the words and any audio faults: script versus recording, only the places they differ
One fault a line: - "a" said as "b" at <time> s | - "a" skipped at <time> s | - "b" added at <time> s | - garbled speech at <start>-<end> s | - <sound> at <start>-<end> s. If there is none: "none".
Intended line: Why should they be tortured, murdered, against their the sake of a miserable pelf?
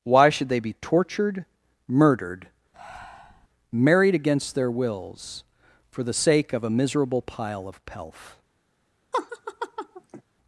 - breath at 2.7-3.5 s
- "married" added at 3.7 s
- "wills for" added at 4.7 s
- "pile of" added at 7.2 s
- laugh at 9.1-10.2 s